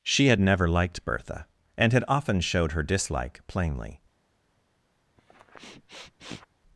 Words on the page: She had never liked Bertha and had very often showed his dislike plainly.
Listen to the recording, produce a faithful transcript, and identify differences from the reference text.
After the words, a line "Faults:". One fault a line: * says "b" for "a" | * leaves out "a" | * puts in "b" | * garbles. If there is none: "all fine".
She had never liked Bertha and had often showed her dislike plainly.
Faults:
* leaves out "very"
* says "her" for "his"